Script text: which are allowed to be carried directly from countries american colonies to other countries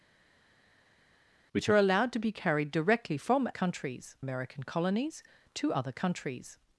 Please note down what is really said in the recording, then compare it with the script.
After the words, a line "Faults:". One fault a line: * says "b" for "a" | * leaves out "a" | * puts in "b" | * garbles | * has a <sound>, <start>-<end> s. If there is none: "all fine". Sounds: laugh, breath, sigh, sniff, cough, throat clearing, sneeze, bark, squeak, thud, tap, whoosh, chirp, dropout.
which are allowed to be carried directly from countries american colonies to other countries
Faults:
all fine